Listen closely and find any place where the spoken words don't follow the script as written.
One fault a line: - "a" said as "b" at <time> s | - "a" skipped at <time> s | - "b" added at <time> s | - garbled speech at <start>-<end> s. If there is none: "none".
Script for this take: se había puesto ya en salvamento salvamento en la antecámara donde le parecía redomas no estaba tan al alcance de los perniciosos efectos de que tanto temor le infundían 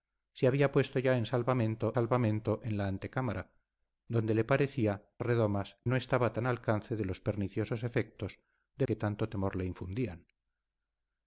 none